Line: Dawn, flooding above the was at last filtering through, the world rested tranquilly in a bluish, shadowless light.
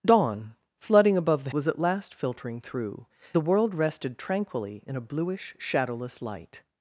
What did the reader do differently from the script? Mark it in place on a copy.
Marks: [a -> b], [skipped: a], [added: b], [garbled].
Dawn, flooding above the was at last filtering through, the world rested tranquilly in a bluish, shadowless light.